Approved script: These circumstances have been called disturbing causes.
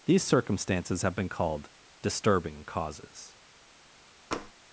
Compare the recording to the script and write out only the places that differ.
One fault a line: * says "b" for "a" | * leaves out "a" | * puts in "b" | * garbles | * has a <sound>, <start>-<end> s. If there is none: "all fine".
* has a tap, 4.3-4.5 s